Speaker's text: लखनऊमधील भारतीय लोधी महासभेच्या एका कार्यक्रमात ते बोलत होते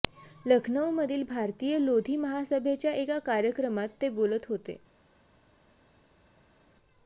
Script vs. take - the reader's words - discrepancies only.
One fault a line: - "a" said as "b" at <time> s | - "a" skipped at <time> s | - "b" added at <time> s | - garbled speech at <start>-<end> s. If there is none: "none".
none